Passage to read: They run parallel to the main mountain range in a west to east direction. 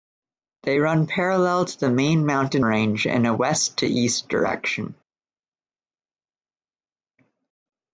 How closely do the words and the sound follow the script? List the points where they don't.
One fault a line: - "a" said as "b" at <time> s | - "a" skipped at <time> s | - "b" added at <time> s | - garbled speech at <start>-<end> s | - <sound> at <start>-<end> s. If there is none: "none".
none